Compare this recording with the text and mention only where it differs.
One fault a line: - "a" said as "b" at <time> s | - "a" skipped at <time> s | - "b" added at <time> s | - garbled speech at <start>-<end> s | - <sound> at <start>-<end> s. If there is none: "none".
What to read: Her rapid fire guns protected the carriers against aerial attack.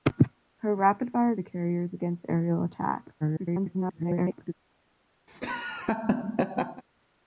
- "guns protected" skipped at 1.3 s
- garbled speech at 3.2-4.5 s
- laugh at 5.3-6.8 s